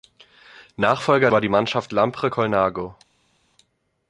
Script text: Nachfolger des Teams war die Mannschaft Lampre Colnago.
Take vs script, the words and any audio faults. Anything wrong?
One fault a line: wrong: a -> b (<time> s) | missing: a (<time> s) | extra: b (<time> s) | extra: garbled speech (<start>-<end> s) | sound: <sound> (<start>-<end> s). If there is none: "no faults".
missing: des Teams (1.3 s)